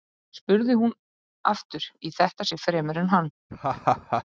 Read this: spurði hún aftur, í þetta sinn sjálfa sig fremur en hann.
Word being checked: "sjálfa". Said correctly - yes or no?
no